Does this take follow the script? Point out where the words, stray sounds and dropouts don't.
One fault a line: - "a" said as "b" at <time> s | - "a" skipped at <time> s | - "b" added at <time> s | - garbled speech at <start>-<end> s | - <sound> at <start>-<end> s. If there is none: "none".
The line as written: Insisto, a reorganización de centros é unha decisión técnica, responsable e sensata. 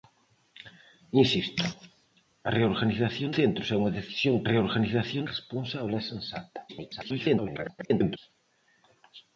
- "de" skipped at 3.3 s
- "técnica" said as "reorganización" at 4.5 s
- garbled speech at 6.7-8.2 s